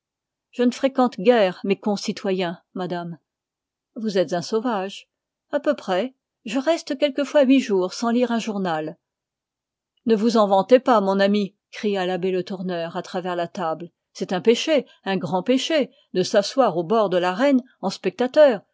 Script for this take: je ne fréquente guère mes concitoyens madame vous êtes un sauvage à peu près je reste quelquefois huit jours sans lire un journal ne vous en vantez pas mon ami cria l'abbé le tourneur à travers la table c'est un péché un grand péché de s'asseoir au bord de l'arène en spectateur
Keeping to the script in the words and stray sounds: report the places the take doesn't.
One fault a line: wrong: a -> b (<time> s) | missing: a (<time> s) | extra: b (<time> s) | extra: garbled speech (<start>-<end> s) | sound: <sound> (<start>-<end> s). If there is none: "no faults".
no faults